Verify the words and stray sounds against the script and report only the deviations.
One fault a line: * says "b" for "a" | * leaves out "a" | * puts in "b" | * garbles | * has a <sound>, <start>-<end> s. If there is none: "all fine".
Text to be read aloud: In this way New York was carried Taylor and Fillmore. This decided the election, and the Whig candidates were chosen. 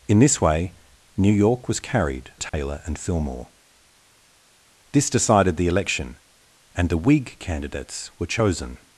* has a dropout, 2.5-2.5 s